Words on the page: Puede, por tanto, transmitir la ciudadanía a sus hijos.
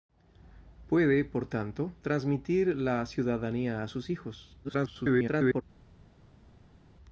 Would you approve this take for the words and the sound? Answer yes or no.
no